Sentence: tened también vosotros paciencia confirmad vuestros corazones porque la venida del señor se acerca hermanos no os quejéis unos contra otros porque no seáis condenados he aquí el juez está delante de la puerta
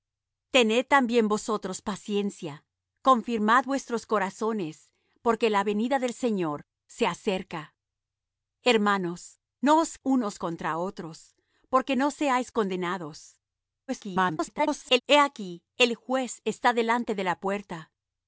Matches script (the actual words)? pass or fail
fail